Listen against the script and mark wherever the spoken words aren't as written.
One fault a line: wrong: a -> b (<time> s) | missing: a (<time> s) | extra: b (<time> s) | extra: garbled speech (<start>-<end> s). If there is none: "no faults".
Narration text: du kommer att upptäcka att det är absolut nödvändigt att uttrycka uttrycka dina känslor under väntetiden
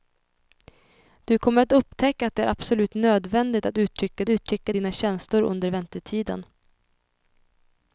no faults